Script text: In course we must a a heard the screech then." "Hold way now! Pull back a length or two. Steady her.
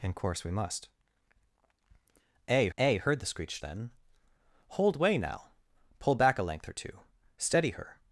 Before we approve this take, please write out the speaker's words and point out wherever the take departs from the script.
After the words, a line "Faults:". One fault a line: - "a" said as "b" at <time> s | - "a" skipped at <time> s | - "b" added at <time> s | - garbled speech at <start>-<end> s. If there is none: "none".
In course we must a a heard the screech then." "Hold way now! Pull back a length or two. Steady her.
Faults:
none